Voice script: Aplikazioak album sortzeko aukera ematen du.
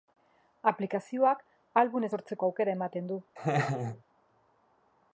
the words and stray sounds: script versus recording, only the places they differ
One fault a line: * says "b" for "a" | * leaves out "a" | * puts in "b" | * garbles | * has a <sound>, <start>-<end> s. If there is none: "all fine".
* has a laugh, 3.4-4.0 s